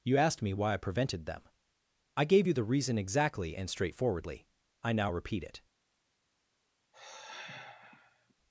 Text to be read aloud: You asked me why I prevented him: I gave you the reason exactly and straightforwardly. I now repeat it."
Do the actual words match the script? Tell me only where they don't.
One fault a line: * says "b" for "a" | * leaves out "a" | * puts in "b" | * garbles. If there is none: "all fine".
* says "them" for "him"